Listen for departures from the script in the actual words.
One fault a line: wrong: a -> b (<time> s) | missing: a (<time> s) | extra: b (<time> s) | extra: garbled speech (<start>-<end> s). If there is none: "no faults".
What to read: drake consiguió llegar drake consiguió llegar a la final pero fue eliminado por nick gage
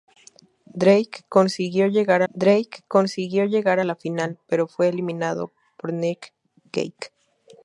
no faults